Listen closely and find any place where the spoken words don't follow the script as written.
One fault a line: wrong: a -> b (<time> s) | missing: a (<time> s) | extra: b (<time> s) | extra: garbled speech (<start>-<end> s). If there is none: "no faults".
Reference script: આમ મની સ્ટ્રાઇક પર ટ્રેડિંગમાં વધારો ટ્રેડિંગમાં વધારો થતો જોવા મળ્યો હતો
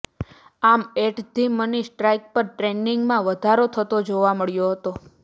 extra: એટ ધી (1.0 s)
missing: ટ્રેડિંગમાં વધારો (3.6 s)